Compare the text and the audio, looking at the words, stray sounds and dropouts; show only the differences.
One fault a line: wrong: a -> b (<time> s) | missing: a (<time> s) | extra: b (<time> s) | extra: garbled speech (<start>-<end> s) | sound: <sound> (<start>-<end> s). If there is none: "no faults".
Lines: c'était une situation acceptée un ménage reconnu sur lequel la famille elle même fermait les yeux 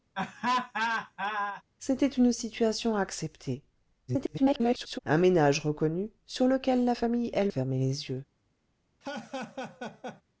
sound: laugh (0.1-1.6 s)
extra: garbled speech (4.1-5.0 s)
missing: même (7.5 s)
sound: laugh (9.0-10.2 s)